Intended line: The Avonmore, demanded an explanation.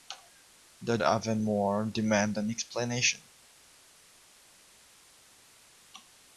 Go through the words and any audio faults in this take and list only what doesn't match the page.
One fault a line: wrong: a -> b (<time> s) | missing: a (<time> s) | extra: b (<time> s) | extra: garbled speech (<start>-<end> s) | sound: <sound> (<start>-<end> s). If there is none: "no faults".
no faults